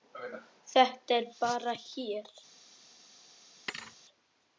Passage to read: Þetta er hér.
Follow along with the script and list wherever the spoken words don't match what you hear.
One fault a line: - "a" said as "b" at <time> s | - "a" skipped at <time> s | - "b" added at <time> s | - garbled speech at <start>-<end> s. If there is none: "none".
- "bara" added at 1.4 s